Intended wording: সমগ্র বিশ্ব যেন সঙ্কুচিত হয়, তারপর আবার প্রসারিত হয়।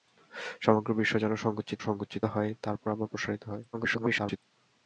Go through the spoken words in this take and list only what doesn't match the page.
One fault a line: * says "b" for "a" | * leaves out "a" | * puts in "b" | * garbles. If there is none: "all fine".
* puts in "সঙ্কুচিত"
* garbles